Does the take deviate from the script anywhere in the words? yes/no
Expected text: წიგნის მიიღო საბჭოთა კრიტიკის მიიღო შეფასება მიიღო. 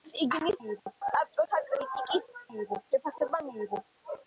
no